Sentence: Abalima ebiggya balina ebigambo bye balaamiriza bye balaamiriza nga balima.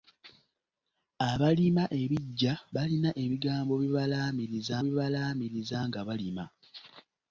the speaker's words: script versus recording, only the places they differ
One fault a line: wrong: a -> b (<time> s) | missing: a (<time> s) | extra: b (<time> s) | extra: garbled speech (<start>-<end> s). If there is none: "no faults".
no faults